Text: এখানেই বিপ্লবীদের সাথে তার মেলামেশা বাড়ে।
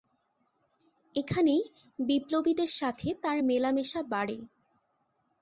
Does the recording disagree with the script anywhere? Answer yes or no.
no